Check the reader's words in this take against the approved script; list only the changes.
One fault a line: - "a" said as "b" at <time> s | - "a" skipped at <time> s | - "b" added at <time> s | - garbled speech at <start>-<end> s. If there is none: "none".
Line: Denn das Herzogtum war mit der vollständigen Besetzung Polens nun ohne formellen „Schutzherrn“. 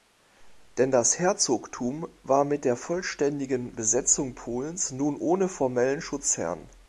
none